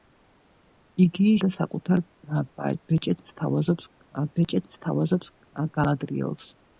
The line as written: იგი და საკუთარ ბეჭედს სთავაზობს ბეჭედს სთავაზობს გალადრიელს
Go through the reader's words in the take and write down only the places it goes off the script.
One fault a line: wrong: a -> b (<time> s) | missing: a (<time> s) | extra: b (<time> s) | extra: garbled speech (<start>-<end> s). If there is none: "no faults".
no faults